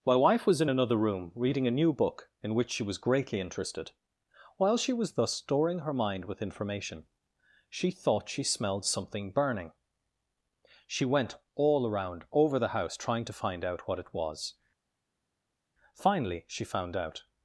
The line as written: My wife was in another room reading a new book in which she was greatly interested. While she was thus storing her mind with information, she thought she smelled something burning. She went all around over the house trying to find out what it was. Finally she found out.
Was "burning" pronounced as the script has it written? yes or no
yes